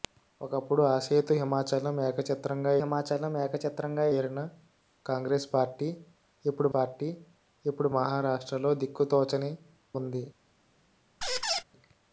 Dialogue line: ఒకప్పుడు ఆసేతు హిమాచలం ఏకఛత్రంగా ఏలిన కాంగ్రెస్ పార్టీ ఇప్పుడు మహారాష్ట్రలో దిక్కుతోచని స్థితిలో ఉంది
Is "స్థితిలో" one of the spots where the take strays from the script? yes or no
yes